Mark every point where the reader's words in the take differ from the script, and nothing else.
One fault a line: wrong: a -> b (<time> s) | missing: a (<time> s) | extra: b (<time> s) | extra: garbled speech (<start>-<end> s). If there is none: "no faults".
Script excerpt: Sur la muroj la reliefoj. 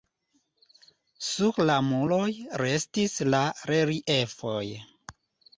extra: restis (2.6 s)